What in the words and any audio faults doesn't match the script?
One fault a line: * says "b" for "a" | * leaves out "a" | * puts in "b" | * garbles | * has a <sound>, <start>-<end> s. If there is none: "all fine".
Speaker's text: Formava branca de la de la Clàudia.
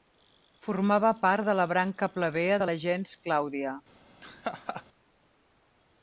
* says "part" for "branca"
* puts in "branca plebea"
* puts in "gens"
* has a laugh, 4.2-4.8 s